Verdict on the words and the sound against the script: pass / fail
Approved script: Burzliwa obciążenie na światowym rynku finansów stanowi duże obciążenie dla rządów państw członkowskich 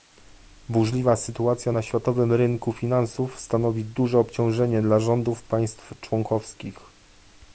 fail